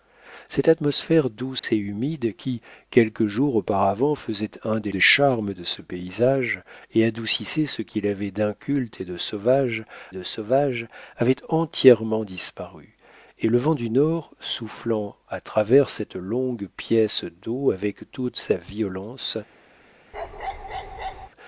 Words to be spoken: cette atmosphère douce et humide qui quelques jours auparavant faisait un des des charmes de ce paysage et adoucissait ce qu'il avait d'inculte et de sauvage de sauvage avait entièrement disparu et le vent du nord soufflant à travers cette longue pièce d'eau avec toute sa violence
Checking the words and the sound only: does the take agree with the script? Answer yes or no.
no